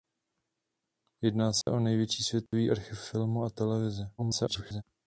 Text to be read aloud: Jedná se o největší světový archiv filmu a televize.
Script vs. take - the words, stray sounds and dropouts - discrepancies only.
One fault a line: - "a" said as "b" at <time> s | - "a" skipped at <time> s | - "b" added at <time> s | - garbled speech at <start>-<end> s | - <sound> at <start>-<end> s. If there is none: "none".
- dropout at 1.6-1.7 s
- dropout at 2.5-2.5 s
- garbled speech at 4.2-4.8 s